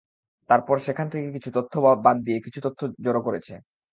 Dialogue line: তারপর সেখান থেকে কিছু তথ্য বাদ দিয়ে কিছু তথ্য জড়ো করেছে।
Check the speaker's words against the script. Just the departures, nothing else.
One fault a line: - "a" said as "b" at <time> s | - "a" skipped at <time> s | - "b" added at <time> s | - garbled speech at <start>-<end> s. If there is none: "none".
none